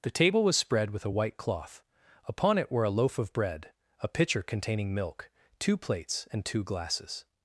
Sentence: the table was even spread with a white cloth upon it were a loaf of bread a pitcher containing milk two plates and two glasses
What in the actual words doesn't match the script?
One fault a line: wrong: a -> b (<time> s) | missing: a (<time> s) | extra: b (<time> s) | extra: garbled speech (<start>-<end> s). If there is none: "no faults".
missing: even (0.6 s)